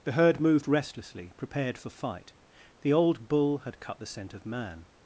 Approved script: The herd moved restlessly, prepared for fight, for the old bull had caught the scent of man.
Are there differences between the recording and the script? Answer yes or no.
yes